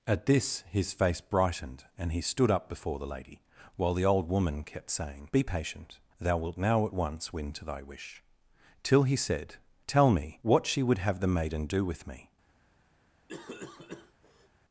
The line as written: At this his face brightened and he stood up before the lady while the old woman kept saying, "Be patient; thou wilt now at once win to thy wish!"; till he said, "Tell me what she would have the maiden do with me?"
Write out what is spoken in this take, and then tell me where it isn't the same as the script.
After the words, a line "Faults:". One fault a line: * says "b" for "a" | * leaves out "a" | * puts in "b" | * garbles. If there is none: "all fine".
At this his face brightened and he stood up before the lady while the old woman kept saying, "Be patient; thou wilt now at once win to thy wish!"; till he said, "Tell me what she would have the maiden do with me?"
Faults:
all fine